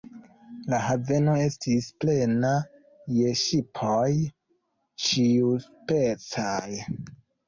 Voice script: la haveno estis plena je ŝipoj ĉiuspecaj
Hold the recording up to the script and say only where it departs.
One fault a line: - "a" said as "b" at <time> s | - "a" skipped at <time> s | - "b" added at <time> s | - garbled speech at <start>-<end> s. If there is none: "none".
none